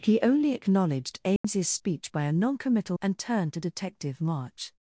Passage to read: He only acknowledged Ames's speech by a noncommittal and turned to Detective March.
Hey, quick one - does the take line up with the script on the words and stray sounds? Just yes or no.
no